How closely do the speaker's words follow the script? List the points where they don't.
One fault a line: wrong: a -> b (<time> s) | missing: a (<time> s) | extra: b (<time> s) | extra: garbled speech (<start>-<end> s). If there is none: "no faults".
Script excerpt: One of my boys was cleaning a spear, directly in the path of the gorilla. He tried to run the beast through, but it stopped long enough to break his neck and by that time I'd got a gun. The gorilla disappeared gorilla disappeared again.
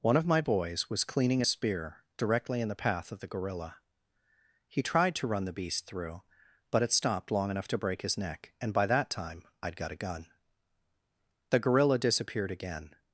missing: gorilla disappeared (12.5 s)